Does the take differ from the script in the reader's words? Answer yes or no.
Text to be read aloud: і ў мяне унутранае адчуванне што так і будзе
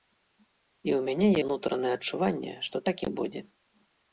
no